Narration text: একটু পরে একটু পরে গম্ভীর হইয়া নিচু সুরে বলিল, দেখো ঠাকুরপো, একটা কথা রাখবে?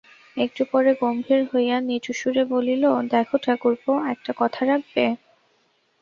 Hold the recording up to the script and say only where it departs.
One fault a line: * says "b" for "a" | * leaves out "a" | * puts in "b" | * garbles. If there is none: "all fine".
* leaves out "একটু পরে"